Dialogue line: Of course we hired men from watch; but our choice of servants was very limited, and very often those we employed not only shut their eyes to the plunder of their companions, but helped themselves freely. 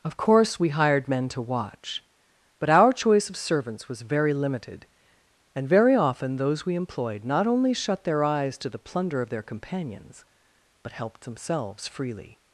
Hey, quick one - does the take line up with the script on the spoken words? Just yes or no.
no